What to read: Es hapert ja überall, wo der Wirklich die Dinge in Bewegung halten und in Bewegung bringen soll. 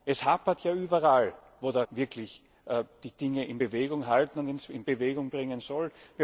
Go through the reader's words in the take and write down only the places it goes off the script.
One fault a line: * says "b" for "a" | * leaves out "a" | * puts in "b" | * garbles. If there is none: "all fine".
all fine